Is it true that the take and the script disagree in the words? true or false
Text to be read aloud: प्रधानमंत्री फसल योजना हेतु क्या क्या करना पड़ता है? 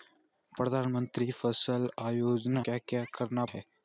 true